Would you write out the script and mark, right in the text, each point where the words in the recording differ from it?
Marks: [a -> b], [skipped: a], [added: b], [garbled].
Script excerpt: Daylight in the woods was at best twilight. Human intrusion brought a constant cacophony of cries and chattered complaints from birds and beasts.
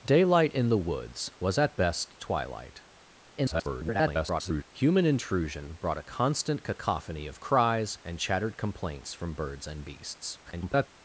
Daylight in the woods was at best twilight. [garbled] Human intrusion brought a constant cacophony of cries and chattered complaints from birds and beasts. [garbled]